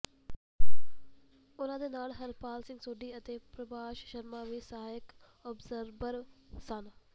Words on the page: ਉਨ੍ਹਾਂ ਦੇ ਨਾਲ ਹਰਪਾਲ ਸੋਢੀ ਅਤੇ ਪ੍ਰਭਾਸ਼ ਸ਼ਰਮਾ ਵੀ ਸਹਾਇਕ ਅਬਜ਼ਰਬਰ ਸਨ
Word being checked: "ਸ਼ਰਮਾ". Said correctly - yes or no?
yes